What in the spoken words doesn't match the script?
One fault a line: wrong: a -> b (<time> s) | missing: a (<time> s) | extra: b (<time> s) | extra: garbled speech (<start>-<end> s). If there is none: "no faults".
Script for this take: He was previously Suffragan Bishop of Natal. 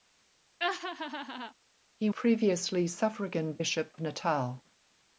missing: was (2.1 s)
missing: of (3.9 s)